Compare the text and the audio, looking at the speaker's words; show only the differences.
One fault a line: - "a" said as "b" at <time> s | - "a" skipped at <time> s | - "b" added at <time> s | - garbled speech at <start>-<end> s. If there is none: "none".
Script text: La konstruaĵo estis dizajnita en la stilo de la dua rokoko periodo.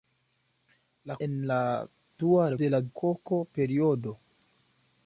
- "konstruaĵo estis dizajnita" skipped at 1.2 s
- "stilo" said as "dua" at 2.3 s
- "dua" skipped at 2.9 s